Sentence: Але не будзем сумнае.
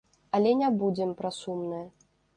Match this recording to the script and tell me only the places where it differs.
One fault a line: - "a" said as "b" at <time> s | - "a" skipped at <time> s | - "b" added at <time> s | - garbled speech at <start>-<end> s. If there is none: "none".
- "пра" added at 1.2 s